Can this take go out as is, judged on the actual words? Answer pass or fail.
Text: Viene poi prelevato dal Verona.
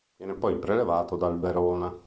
pass